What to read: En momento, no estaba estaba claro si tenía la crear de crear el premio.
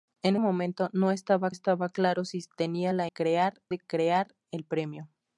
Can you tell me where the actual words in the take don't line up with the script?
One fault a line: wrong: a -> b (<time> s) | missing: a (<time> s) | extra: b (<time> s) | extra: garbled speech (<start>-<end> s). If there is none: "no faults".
no faults